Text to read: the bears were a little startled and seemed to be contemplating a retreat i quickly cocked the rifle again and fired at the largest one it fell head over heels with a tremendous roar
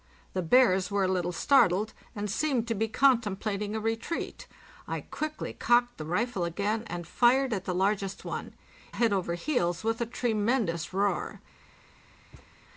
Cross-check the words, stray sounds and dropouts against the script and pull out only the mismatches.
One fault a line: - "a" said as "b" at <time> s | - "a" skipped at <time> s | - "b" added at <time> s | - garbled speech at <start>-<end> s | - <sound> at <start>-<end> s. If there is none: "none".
- "it fell" skipped at 8.5 s
- thud at 12.3-12.5 s